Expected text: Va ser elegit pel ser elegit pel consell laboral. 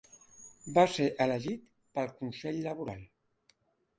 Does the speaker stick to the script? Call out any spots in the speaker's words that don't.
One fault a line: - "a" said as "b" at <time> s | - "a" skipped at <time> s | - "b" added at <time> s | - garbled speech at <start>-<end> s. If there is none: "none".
- "ser elegit pel" skipped at 2.1 s